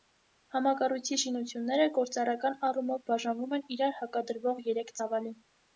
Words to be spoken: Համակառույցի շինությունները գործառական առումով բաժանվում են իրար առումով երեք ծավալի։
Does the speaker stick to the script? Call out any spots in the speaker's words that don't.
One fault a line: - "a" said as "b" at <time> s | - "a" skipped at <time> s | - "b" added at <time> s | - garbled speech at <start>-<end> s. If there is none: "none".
- "առումով" said as "հակադրվող" at 4.0 s